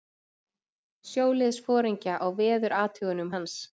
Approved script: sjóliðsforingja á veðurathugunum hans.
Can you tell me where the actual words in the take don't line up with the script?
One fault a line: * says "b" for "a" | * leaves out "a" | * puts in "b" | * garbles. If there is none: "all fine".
all fine